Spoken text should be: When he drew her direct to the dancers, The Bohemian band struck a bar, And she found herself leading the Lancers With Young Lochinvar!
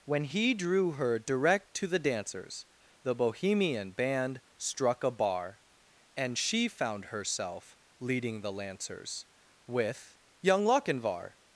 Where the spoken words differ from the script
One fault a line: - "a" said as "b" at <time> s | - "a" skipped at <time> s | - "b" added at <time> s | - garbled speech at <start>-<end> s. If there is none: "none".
none